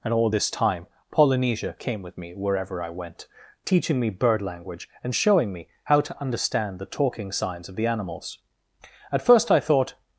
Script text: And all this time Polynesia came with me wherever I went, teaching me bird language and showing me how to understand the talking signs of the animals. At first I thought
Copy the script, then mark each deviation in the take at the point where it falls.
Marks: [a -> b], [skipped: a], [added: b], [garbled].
And all this time Polynesia came with me wherever I went, teaching me bird language and showing me how to understand the talking signs of the animals. At first I thought